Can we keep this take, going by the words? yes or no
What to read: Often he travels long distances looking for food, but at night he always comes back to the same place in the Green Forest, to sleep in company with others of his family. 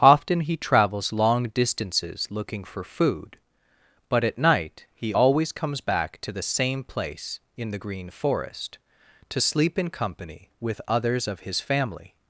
yes